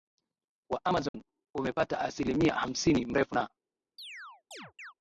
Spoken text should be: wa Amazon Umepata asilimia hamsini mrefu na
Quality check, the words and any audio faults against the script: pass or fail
fail